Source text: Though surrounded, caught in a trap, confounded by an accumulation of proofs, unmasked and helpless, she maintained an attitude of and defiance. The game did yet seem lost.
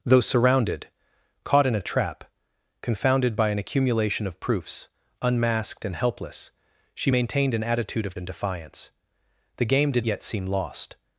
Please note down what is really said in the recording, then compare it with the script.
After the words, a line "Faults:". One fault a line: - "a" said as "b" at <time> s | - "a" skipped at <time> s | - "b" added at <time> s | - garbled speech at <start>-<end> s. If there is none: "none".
Though surrounded, caught in a trap, confounded by an accumulation of proofs, unmasked and helpless, she maintained an attitude of and defiance. The game did yet seem lost.
Faults:
none